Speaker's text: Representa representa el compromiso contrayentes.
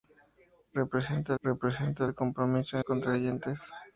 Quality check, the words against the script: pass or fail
pass